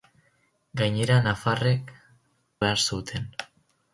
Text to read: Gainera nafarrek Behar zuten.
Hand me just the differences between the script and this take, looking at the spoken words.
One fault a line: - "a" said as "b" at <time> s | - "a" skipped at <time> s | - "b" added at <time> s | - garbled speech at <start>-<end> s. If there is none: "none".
none